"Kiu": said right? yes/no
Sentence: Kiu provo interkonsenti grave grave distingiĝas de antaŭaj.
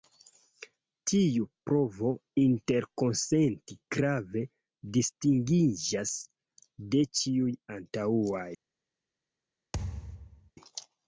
no